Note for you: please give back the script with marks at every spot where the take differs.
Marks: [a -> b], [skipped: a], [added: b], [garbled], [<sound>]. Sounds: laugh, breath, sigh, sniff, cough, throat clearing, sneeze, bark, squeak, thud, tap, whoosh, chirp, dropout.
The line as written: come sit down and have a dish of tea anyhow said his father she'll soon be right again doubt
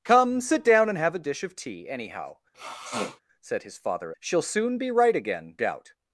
come sit down and have a dish of tea anyhow [sniff] said his father she'll soon be right again doubt